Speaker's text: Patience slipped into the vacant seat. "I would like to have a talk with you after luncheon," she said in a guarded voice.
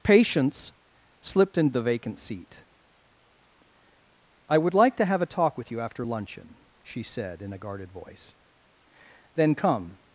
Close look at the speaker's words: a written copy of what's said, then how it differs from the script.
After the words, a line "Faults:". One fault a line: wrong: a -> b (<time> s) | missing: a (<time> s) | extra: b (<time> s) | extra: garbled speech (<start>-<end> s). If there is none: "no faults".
Patience slipped into the vacant seat. "I would like to have a talk with you after luncheon," she said in a guarded voice. "Then come
Faults:
extra: Then come (9.3 s)